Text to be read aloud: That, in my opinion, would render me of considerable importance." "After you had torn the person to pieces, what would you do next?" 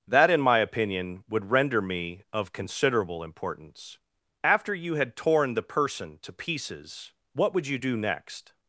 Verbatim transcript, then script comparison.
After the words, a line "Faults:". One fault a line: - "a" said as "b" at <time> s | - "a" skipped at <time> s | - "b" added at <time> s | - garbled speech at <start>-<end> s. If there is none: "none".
That, in my opinion, would render me of considerable importance." "After you had torn the person to pieces, what would you do next?"
Faults:
none